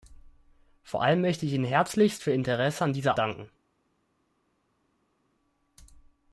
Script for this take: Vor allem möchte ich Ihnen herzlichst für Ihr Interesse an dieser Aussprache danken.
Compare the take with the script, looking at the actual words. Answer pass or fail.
fail